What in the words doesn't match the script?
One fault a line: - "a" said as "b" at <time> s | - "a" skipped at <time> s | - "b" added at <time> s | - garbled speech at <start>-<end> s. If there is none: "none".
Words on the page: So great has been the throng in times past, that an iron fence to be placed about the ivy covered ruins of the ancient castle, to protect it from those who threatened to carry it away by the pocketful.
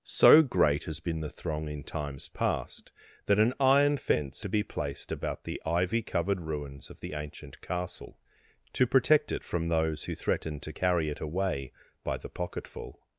none